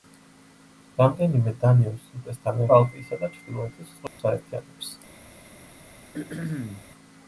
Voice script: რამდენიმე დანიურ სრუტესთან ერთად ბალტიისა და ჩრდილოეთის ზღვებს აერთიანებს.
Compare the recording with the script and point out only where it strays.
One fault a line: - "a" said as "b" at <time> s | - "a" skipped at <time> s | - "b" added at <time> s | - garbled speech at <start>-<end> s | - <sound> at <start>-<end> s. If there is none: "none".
- "ერთად" skipped at 2.6 s
- dropout at 4.1-4.2 s
- throat clearing at 6.1-6.9 s